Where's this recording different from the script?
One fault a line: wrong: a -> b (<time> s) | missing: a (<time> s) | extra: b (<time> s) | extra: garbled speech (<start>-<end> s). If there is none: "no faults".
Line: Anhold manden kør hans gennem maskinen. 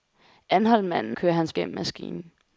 no faults